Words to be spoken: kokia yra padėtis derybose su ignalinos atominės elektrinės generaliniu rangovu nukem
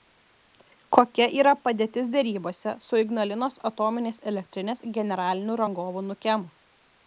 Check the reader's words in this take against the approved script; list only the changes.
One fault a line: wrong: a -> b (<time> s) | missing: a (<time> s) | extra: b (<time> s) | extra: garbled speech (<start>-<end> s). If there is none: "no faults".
no faults